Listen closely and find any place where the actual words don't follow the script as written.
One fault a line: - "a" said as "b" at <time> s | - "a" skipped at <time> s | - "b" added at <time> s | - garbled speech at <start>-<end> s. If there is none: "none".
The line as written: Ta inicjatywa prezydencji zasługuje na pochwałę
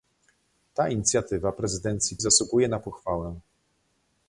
none